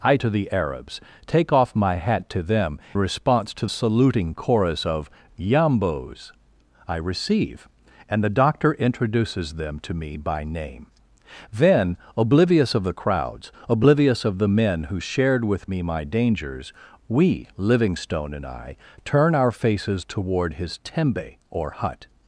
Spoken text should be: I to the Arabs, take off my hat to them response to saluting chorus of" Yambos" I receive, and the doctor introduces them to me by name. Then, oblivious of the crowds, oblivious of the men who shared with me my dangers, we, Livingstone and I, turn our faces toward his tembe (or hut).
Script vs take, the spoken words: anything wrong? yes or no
no